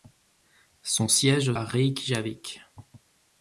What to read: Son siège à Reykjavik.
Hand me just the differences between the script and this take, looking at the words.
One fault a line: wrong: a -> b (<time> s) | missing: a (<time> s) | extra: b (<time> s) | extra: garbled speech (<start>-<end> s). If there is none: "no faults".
no faults